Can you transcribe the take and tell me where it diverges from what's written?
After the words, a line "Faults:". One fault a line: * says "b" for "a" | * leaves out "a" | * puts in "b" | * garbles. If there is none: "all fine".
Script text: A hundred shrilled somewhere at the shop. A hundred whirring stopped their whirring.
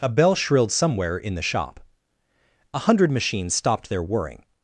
A bell shrilled somewhere in the shop. A hundred machines stopped their whirring.
Faults:
* says "bell" for "hundred"
* says "in" for "at"
* says "machines" for "whirring"